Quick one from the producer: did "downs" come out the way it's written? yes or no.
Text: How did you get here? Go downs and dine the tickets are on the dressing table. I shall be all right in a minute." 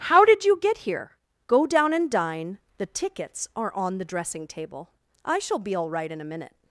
no